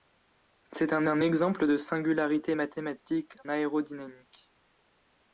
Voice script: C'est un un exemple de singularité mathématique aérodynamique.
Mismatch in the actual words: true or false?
false